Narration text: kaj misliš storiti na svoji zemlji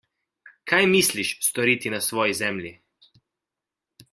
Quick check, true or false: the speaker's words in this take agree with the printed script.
true